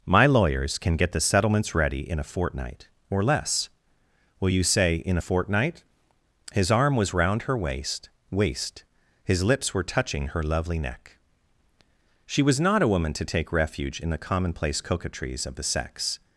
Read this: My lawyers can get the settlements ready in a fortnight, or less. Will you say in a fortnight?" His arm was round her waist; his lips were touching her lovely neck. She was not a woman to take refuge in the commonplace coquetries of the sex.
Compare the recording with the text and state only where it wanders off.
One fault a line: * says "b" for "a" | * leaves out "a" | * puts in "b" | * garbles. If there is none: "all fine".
* puts in "waist"